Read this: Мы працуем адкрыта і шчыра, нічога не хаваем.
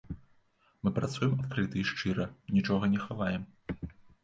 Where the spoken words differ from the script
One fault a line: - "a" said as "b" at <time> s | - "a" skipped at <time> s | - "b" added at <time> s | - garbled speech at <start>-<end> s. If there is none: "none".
none